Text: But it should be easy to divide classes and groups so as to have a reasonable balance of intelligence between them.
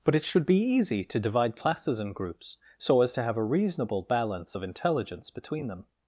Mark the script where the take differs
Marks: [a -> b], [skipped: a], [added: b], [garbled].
But it should be easy to divide classes and groups so as to have a reasonable balance of intelligence between them.